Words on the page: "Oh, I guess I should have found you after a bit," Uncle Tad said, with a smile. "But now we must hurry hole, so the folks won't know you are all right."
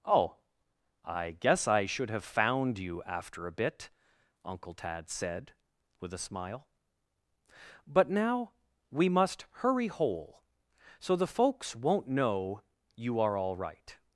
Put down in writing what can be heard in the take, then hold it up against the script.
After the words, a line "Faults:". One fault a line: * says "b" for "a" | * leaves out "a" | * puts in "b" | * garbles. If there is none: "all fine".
"Oh, I guess I should have found you after a bit," Uncle Tad said, with a smile. "But now we must hurry hole, so the folks won't know you are all right."
Faults:
all fine